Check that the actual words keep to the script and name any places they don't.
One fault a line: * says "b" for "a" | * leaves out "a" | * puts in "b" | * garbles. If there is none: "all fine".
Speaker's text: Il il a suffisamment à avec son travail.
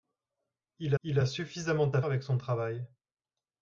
all fine